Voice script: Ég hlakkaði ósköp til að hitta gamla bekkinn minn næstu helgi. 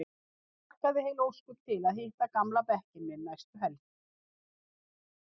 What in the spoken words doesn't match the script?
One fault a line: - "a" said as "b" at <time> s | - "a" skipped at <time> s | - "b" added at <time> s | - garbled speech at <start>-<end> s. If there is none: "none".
- "heil" added at 1.1 s